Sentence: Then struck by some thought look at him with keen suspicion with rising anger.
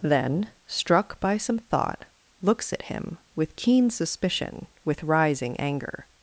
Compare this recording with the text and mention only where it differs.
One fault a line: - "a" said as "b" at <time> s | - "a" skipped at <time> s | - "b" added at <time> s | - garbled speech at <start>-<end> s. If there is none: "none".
- "look" said as "looks" at 2.4 s